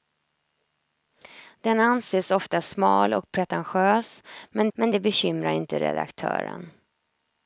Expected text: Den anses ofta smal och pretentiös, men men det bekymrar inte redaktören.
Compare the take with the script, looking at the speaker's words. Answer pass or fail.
pass